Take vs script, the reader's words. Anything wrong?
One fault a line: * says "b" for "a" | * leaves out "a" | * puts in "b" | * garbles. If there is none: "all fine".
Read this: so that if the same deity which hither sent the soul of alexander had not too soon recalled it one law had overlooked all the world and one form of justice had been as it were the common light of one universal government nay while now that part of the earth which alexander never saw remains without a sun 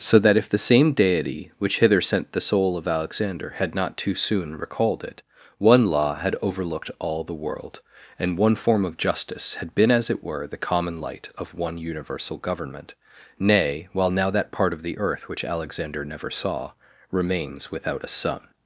all fine